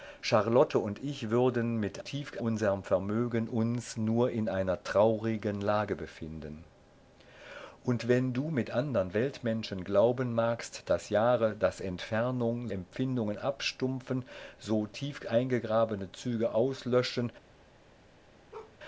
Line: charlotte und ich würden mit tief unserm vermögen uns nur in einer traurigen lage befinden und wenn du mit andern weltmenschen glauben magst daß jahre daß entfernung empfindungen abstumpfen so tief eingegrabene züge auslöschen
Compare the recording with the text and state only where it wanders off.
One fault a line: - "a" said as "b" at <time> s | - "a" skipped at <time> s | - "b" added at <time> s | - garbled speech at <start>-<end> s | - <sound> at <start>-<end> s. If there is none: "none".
- bark at 18.5-18.8 s